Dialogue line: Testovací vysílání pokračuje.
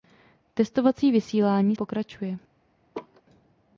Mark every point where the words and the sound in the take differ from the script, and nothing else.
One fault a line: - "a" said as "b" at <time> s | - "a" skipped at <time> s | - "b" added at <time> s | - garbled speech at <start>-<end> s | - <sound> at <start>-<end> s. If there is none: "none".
- laugh at 2.9-3.2 s